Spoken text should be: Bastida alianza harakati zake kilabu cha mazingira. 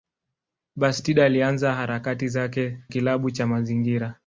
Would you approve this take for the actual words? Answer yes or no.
yes